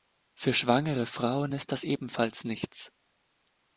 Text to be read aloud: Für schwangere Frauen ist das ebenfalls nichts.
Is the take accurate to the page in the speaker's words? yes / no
yes